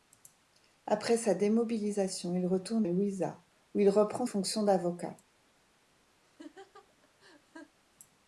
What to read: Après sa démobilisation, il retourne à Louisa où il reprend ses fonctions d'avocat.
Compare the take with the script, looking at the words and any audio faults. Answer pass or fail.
fail